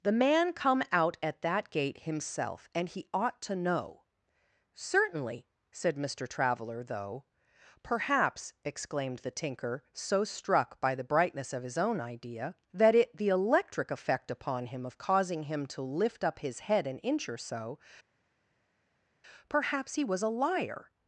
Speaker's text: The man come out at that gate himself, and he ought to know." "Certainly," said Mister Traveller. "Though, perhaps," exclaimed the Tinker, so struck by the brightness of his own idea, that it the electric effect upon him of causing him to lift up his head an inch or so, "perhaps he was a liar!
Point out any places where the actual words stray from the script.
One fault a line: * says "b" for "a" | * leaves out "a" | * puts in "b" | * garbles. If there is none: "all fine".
all fine